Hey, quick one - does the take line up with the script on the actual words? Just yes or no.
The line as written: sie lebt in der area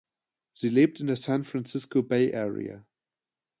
no